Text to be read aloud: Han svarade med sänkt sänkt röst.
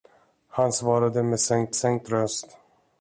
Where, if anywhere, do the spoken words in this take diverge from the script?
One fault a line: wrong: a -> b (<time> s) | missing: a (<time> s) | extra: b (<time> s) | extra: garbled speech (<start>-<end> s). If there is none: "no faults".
no faults